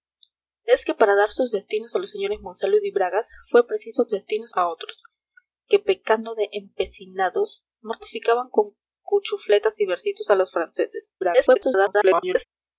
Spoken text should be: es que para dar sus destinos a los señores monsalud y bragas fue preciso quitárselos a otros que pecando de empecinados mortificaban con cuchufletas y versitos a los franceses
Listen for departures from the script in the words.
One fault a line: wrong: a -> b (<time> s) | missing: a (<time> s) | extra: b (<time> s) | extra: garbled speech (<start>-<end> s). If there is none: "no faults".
wrong: quitárselos -> destinos (4.1 s)
extra: garbled speech (11.2-12.4 s)